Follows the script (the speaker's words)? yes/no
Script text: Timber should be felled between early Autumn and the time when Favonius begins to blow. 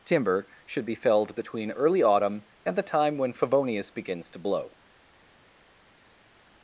yes